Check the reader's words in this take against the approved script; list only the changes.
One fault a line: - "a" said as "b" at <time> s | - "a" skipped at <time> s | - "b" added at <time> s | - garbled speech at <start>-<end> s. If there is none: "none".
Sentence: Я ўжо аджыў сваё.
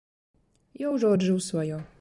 none